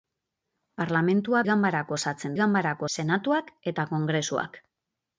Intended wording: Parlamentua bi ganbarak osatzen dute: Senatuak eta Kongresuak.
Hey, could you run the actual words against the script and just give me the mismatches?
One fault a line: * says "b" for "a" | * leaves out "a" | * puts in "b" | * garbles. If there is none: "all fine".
* leaves out "bi"
* says "ganbarak" for "dute"